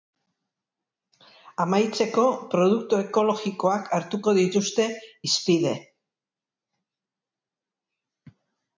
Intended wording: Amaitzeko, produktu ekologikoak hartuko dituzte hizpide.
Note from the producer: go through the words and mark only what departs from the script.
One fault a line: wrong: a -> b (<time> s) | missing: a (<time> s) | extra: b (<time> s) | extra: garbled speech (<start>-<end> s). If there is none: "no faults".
no faults